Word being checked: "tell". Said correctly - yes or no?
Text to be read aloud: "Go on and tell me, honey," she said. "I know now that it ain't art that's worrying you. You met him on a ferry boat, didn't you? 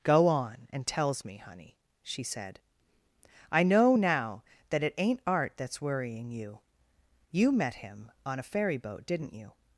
no